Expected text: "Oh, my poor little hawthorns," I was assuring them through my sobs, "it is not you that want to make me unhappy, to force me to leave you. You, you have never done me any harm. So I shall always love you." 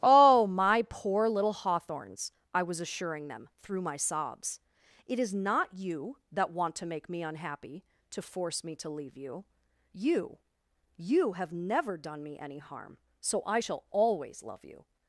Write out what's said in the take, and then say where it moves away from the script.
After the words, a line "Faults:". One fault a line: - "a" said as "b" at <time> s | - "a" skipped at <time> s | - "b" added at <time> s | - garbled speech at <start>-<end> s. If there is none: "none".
"Oh, my poor little hawthorns," I was assuring them through my sobs, "it is not you that want to make me unhappy, to force me to leave you. You, you have never done me any harm. So I shall always love you."
Faults:
none